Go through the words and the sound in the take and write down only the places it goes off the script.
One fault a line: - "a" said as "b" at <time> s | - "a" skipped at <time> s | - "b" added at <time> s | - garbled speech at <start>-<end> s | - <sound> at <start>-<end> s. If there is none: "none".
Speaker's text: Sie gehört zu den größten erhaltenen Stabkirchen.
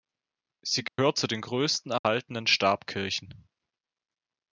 - dropout at 0.9-1.0 s
- dropout at 2.0-2.0 s